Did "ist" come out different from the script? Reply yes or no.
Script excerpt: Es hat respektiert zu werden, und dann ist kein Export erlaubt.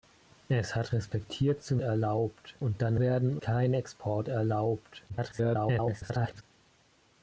yes